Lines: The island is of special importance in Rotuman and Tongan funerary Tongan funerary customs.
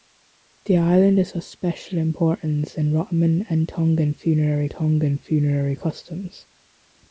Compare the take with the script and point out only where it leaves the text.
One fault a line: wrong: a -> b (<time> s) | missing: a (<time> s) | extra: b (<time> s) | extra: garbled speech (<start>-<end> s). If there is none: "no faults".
no faults